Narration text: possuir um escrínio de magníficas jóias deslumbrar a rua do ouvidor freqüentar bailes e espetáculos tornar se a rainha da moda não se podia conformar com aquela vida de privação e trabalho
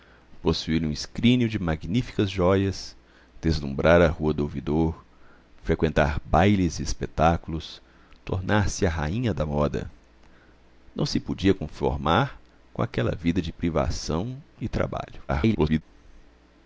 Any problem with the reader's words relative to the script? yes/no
yes